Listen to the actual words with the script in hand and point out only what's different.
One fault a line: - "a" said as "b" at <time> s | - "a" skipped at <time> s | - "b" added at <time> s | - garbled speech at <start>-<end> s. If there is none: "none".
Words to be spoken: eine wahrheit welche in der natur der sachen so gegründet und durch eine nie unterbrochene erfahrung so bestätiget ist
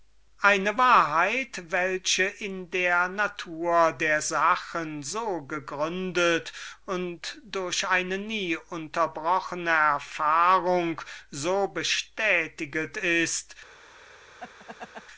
none